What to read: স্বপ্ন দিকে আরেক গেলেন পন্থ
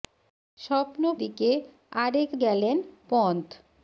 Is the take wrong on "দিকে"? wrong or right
right